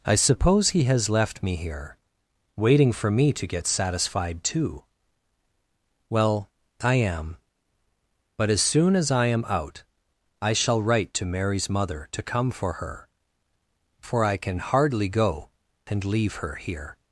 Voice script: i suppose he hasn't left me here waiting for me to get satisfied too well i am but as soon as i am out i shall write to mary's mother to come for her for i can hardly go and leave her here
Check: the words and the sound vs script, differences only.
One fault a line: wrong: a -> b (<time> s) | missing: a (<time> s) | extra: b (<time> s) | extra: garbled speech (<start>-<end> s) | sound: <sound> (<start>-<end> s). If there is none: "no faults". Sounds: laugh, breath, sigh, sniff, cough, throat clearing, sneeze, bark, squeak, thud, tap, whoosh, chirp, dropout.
wrong: hasn't -> has (0.8 s)